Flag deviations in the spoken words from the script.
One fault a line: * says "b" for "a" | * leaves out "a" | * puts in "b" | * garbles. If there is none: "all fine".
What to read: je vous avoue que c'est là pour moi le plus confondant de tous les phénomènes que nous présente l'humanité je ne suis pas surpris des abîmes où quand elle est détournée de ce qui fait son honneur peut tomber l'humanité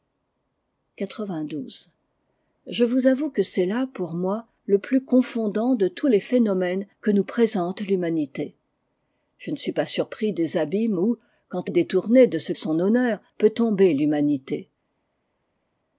* leaves out "elle"
* leaves out "qui fait"